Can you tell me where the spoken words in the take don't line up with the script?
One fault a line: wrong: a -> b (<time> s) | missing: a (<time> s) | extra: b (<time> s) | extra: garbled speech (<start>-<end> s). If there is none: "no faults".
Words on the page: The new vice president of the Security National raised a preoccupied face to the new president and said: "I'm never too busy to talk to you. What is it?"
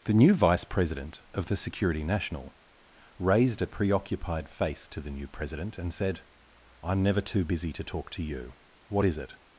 no faults